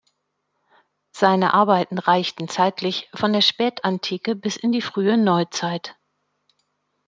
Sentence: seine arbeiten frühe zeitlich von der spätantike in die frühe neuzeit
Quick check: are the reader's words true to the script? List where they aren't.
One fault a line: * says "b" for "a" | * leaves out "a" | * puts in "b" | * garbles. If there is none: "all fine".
* says "reichten" for "frühe"
* puts in "bis"